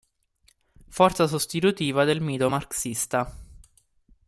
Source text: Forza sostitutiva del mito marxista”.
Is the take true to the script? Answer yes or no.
yes